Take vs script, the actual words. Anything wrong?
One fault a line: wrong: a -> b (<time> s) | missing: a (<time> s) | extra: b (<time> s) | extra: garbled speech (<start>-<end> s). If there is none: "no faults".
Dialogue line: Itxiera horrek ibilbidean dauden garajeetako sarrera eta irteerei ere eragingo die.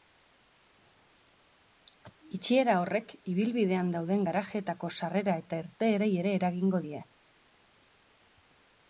no faults